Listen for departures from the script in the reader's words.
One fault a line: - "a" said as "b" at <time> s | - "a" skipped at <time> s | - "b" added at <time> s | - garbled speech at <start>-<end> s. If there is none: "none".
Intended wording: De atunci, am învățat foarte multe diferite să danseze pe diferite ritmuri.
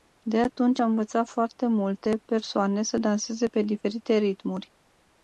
- "diferite" said as "persoane" at 2.2 s